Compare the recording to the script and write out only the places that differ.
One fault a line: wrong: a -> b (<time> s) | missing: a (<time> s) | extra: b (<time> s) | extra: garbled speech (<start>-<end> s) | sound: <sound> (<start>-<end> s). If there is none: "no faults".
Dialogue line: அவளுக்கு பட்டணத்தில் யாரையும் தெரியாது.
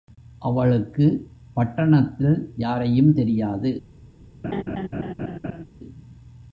sound: laugh (4.4-5.6 s)